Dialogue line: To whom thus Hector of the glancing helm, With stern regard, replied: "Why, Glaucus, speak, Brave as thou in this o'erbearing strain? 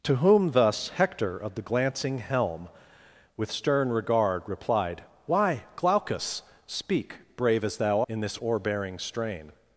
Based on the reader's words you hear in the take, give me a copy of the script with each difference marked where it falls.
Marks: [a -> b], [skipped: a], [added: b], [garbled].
To whom thus Hector of the glancing helm, With stern regard, replied: "Why, Glaucus, speak, Brave as thou in this o'erbearing strain?